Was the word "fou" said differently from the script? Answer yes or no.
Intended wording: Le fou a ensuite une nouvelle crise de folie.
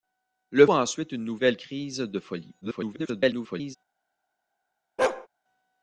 yes